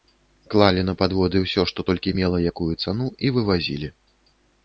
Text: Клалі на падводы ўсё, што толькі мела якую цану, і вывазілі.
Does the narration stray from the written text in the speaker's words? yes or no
no